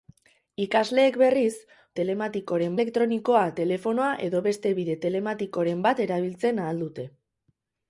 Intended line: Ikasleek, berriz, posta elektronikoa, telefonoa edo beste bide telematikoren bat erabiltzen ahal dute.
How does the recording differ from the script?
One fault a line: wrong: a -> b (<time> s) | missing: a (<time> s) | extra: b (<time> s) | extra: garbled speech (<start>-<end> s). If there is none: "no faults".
wrong: posta -> telematikoren (2.0 s)